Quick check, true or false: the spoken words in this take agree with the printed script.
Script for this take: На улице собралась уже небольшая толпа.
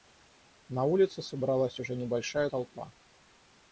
true